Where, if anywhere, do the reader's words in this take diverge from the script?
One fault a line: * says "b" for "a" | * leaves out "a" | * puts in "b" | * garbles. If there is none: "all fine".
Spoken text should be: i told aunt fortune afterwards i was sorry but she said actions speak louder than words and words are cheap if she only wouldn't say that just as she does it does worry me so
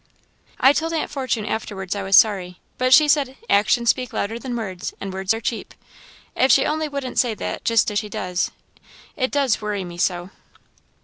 all fine